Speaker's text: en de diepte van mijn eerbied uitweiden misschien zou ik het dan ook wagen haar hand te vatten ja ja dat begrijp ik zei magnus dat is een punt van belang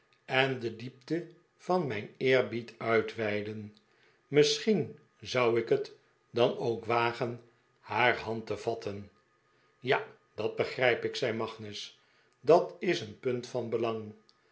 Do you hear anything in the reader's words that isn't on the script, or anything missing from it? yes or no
yes